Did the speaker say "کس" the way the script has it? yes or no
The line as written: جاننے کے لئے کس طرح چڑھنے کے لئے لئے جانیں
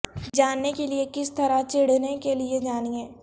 yes